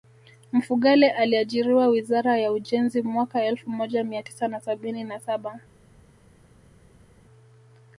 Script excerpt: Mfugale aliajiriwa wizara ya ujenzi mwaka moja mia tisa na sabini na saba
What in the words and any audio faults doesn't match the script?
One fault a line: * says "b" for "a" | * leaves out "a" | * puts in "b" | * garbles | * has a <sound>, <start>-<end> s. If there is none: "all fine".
* puts in "elfu"